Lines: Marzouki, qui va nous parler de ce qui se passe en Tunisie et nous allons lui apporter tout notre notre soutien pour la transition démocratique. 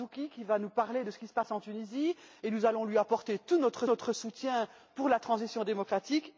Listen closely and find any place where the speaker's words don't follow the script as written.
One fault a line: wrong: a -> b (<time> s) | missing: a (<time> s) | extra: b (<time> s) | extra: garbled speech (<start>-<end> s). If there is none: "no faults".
no faults